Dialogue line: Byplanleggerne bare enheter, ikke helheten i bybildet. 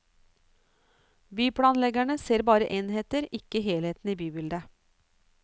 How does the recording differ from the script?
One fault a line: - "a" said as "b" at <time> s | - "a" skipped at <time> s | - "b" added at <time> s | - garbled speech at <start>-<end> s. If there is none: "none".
- "ser" added at 2.2 s